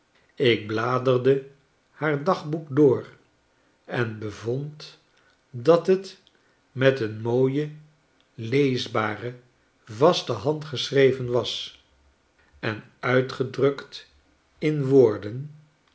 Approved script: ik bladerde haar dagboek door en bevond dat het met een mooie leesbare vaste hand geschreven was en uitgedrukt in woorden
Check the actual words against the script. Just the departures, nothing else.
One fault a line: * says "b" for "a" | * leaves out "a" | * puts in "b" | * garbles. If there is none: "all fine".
all fine